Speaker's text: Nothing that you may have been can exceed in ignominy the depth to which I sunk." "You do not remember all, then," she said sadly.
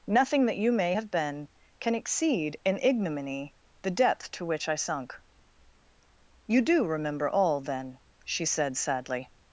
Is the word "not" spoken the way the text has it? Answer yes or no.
no